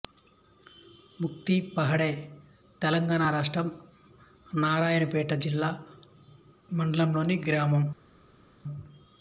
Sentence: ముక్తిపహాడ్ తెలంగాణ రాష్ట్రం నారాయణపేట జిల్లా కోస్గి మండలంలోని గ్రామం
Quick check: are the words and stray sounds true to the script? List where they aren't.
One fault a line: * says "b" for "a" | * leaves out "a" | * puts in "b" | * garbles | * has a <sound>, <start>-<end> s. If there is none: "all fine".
* leaves out "కోస్గి"